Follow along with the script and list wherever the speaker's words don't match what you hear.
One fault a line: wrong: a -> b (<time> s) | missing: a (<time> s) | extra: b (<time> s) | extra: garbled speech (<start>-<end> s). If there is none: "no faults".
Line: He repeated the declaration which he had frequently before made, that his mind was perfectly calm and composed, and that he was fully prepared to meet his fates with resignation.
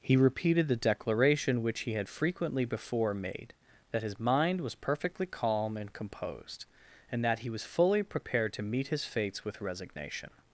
no faults